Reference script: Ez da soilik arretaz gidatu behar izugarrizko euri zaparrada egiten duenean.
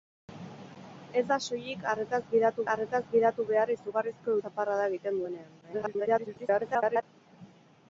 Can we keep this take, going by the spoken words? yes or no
no